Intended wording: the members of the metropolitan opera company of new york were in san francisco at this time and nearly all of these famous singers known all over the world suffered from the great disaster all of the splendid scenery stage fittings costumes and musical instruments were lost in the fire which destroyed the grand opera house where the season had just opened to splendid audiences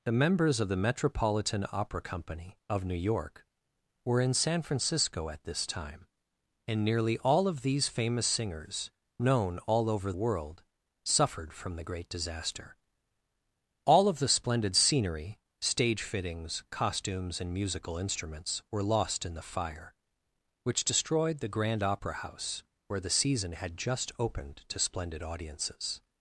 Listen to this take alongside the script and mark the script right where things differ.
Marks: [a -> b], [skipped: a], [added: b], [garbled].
the members of the metropolitan opera company of new york were in san francisco at this time and nearly all of these famous singers known all over [skipped: the] world suffered from the great disaster all of the splendid scenery stage fittings costumes and musical instruments were lost in the fire which destroyed the grand opera house where the season had just opened to splendid audiences